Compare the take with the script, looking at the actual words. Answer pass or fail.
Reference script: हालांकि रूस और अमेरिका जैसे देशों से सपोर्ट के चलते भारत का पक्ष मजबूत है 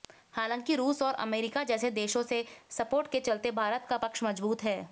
pass